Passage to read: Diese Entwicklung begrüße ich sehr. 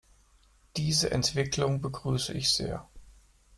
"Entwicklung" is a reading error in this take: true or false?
false